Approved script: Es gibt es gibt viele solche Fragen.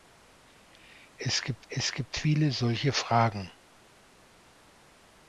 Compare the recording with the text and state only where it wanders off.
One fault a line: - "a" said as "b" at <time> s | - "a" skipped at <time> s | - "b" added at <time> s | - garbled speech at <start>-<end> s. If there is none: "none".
none